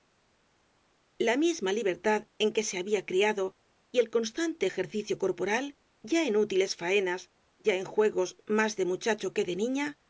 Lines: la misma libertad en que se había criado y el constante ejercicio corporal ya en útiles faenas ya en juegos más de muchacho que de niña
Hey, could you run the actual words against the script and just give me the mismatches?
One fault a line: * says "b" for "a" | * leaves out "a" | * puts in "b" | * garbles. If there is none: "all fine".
all fine